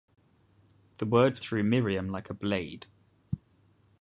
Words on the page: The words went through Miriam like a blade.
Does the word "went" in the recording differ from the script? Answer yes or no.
yes